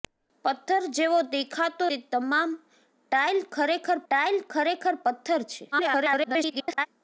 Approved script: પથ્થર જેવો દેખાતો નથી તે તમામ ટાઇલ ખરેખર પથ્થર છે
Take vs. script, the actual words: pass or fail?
fail